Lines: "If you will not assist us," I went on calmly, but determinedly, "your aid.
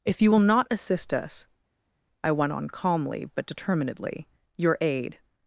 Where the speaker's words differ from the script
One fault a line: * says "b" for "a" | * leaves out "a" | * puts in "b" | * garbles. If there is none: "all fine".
all fine